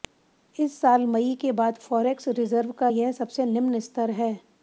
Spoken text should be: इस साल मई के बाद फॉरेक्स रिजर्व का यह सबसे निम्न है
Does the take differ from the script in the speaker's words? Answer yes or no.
yes